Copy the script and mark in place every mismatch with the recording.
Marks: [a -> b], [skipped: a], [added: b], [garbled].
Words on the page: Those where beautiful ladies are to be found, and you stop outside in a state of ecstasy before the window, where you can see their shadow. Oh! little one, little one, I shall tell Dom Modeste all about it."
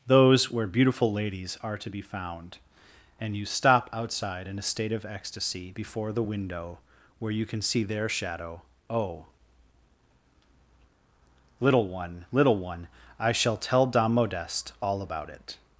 Those where beautiful ladies are to be found, and you stop outside in a state of ecstasy before the window, where you can see their shadow. Oh! little one, little one, I shall tell Dom Modeste all about it."